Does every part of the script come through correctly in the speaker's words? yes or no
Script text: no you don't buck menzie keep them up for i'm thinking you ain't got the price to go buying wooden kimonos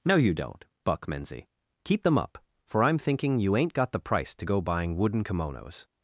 yes